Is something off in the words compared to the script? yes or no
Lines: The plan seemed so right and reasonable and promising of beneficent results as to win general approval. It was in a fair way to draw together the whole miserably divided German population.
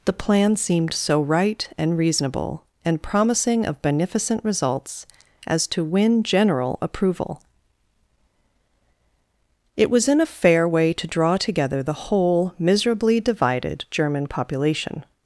no